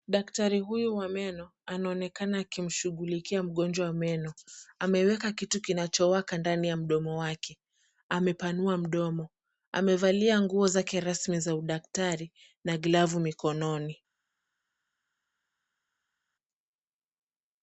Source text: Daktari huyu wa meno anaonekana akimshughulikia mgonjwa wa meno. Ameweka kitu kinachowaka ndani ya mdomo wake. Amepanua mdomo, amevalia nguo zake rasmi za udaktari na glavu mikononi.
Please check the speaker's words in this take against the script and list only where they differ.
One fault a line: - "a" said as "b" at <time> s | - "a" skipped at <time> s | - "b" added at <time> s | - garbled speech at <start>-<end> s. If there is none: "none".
none